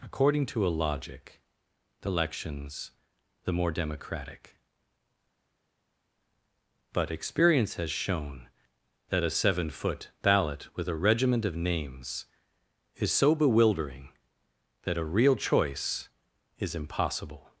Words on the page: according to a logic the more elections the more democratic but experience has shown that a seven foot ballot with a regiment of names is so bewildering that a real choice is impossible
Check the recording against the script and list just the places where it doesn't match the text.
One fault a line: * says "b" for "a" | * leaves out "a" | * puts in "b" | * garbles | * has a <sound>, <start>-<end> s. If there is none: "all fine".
* leaves out "more"